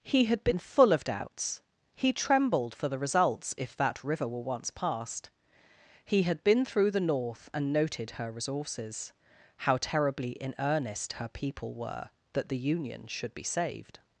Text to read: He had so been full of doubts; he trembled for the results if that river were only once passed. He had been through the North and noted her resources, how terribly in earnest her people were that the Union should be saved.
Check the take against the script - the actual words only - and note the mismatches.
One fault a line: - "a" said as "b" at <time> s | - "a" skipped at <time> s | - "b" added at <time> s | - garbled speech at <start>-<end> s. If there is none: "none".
- "so" skipped at 0.4 s
- "only" skipped at 4.4 s